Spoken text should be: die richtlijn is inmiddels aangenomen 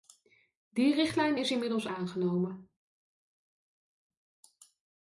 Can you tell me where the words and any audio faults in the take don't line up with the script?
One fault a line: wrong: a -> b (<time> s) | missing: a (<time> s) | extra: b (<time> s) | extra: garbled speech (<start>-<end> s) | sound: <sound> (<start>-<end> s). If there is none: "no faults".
no faults